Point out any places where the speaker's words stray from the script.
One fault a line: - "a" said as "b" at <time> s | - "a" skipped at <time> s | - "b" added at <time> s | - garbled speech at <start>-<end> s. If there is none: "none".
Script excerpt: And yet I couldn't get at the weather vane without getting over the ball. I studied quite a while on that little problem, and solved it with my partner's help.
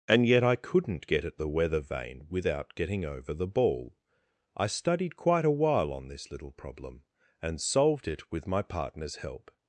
- "that" said as "this" at 6.1 s